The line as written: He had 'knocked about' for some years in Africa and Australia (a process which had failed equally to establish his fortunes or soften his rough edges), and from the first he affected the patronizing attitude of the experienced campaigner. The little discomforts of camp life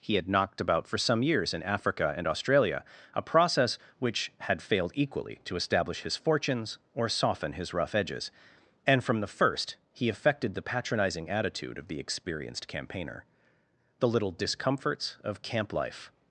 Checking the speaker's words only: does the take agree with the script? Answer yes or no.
yes